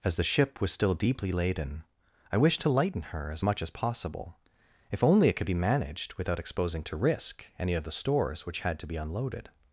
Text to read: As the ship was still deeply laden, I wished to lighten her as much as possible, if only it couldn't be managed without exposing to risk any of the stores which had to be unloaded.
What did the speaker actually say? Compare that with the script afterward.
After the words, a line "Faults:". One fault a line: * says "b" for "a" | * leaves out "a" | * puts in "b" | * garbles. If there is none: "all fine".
As the ship was still deeply laden, I wished to lighten her as much as possible, if only it could be managed without exposing to risk any of the stores which had to be unloaded.
Faults:
* says "could" for "couldn't"